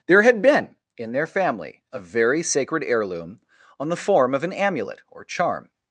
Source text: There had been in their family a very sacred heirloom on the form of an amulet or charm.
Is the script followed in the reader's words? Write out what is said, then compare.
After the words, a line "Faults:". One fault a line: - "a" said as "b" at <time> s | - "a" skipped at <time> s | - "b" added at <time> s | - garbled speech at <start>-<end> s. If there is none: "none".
There had been in their family a very sacred heirloom on the form of an amulet or charm.
Faults:
none